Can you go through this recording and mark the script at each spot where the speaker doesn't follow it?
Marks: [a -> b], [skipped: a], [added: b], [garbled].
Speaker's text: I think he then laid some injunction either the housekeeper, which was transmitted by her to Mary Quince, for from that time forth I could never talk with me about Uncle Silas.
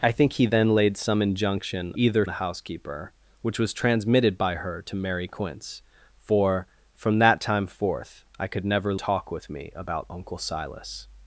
I think he then laid some injunction either the housekeeper, which was transmitted by her to Mary Quince, for from that time forth I could never talk with me about Uncle Silas.